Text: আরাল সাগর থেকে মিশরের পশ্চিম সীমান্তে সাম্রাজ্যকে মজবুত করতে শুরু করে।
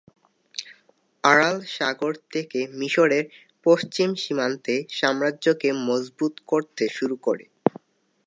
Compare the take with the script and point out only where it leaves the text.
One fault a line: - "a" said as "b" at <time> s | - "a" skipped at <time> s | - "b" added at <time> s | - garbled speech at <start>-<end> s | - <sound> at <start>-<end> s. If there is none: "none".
none